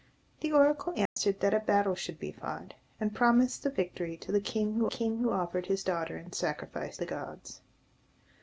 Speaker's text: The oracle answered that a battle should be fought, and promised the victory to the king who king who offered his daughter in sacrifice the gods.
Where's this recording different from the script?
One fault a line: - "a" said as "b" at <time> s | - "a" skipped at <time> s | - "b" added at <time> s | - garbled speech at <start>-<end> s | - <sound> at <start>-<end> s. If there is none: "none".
- dropout at 1.1-1.2 s